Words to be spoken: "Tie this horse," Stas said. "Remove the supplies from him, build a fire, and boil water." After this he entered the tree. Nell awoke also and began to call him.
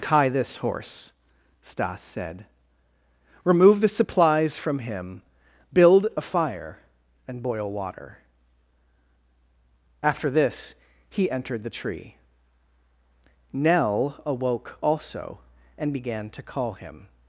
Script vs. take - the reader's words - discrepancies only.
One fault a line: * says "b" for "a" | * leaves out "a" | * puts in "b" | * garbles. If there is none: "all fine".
all fine